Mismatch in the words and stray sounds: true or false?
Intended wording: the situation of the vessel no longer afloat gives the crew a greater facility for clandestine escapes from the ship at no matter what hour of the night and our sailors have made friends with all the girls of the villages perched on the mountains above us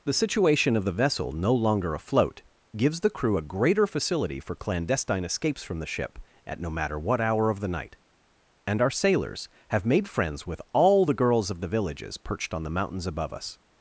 false